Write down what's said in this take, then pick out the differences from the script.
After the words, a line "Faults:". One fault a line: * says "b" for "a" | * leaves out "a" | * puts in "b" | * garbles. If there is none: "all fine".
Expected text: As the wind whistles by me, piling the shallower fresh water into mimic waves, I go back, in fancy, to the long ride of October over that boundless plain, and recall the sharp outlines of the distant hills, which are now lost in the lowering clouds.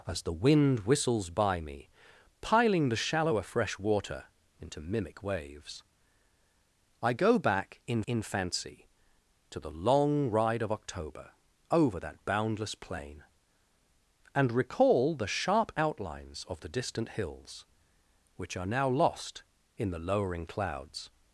As the wind whistles by me, piling the shallower fresh water into mimic waves, I go back, in in fancy, to the long ride of October over that boundless plain, and recall the sharp outlines of the distant hills, which are now lost in the lowering clouds.
Faults:
* puts in "in"